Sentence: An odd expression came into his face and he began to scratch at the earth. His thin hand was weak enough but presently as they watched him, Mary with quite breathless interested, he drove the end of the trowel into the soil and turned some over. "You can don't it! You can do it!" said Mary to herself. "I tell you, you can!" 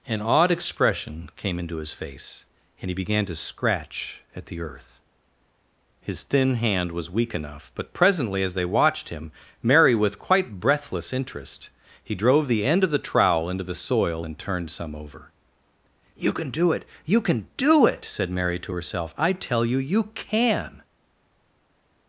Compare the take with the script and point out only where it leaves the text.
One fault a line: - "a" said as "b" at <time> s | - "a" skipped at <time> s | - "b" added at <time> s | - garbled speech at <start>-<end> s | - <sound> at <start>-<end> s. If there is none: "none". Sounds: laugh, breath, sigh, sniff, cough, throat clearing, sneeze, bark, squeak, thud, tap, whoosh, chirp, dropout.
- "interested" said as "interest" at 11.1 s
- "don't" said as "do" at 16.5 s